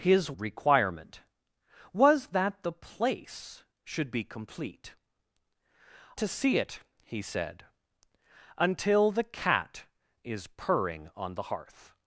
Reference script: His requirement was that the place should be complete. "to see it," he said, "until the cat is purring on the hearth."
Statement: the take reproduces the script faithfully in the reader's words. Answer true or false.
true